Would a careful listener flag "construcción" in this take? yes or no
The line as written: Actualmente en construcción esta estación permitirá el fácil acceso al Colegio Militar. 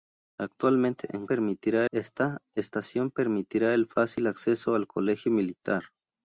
yes